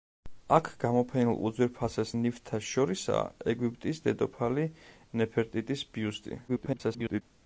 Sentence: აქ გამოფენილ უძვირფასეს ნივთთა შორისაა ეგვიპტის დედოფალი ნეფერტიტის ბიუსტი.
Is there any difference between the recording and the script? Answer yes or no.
yes